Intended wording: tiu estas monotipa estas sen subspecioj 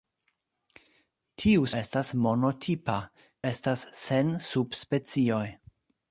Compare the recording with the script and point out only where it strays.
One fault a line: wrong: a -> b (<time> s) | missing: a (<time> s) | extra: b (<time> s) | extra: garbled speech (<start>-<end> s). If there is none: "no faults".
no faults